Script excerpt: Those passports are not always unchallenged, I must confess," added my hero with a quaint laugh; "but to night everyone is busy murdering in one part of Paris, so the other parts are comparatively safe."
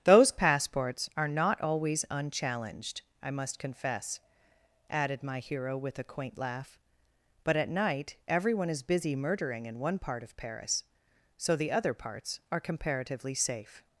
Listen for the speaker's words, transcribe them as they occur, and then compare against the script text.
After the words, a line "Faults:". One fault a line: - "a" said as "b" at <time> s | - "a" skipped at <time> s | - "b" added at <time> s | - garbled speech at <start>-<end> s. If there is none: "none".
Those passports are not always unchallenged, I must confess," added my hero with a quaint laugh; "but at night everyone is busy murdering in one part of Paris, so the other parts are comparatively safe."
Faults:
- "to" said as "at" at 7.5 s